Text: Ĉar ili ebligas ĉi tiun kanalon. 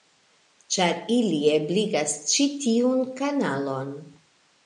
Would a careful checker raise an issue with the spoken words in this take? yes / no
no